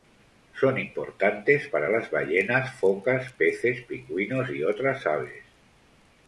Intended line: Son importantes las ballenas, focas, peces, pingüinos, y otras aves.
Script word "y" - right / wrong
right